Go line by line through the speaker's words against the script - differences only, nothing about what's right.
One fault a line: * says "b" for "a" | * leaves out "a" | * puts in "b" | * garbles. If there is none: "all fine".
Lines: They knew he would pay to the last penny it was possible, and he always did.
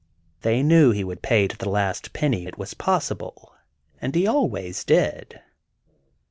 all fine